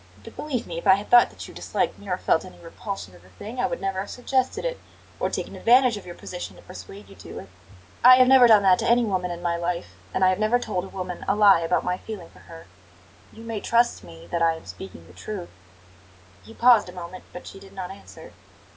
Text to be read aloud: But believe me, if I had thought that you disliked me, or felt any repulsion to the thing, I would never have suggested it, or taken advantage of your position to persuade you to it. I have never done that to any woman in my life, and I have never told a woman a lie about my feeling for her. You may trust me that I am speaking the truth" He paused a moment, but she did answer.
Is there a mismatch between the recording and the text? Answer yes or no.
yes